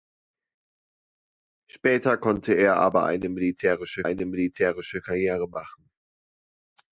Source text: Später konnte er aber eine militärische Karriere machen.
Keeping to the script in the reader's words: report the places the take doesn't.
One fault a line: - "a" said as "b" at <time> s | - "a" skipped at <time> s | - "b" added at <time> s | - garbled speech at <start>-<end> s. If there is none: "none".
- "eine militärische" added at 4.0 s